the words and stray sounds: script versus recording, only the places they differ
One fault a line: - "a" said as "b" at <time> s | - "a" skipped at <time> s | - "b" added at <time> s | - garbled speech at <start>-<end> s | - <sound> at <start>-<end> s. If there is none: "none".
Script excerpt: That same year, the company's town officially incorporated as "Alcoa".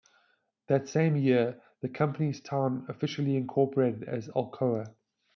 none